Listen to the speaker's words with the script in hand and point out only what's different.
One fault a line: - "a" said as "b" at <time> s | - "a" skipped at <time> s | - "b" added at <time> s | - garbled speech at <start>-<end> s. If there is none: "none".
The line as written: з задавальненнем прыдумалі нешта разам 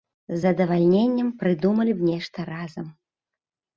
- "б" added at 2.0 s